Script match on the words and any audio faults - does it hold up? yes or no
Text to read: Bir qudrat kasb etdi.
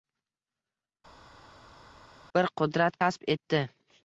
yes